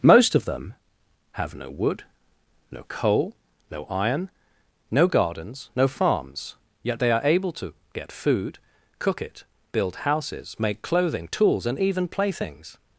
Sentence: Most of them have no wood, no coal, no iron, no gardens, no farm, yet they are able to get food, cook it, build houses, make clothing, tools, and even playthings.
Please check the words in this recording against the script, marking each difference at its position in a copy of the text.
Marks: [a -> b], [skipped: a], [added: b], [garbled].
Most of them have no wood, no coal, no iron, no gardens, no [farm, -> farms] yet they are able to get food, cook it, build houses, make clothing, tools, and even playthings.